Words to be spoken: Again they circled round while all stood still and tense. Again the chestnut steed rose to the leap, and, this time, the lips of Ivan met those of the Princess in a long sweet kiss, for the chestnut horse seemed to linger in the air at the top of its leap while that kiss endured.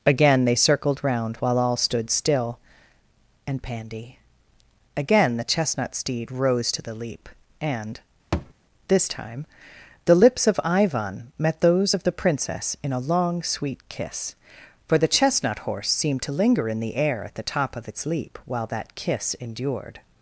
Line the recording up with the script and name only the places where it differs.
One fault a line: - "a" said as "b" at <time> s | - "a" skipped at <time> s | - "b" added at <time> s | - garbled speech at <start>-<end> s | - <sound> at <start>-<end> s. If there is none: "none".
- "tense" said as "pandy" at 3.6 s
- thud at 8.3-8.5 s